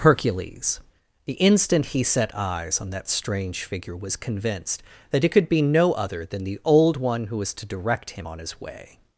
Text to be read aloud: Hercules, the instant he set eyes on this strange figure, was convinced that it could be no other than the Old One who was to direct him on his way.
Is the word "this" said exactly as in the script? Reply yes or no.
no